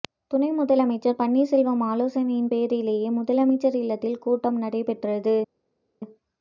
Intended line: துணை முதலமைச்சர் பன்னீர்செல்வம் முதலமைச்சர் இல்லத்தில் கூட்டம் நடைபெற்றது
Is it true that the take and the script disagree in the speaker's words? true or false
true